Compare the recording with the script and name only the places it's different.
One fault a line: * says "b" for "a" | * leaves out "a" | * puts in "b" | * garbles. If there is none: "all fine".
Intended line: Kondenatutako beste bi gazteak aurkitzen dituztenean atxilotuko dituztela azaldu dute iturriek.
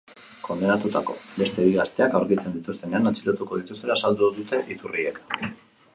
all fine